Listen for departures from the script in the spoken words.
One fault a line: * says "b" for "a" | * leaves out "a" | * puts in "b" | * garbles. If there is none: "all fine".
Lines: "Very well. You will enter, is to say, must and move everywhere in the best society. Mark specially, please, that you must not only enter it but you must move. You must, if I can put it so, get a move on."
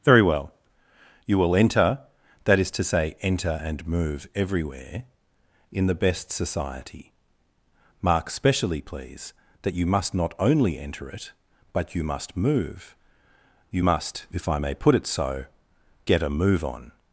* puts in "that"
* says "enter" for "must"
* says "may" for "can"